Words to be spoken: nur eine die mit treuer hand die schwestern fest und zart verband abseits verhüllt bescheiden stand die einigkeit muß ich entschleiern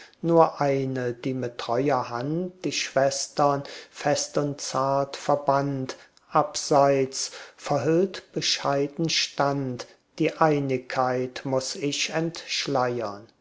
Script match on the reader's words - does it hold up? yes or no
yes